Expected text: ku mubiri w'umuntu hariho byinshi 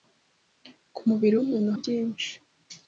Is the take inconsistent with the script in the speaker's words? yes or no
yes